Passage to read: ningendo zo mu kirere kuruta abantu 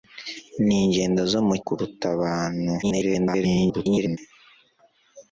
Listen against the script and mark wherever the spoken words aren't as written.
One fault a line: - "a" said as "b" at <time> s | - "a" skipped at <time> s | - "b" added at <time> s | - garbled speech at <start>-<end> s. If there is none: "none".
- "kirere" skipped at 1.6 s
- garbled speech at 2.8-4.2 s